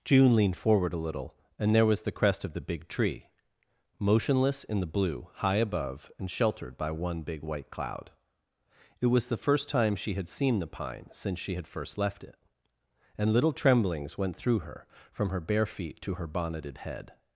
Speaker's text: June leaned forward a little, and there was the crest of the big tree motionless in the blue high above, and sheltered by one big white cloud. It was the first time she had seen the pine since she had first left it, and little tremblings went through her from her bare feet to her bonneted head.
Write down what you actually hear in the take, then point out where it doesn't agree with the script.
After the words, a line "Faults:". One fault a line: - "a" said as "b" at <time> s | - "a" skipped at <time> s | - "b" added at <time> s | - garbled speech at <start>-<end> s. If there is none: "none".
June leaned forward a little, and there was the crest of the big tree motionless in the blue high above, and sheltered by one big white cloud. It was the first time she had seen the pine since she had first left it, and little tremblings went through her from her bare feet to her bonneted head.
Faults:
none